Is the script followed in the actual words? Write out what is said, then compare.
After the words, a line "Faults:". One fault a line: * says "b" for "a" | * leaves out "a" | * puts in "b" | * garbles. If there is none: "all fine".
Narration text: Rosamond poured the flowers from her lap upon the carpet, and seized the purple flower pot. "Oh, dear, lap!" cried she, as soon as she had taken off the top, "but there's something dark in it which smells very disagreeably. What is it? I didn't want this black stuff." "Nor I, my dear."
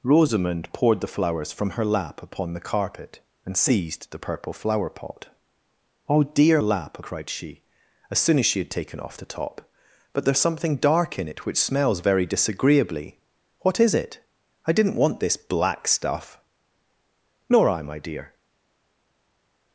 Rosamond poured the flowers from her lap upon the carpet, and seized the purple flower pot. "Oh, dear, lap!" cried she, as soon as she had taken off the top, "but there's something dark in it which smells very disagreeably. What is it? I didn't want this black stuff." "Nor I, my dear."
Faults:
all fine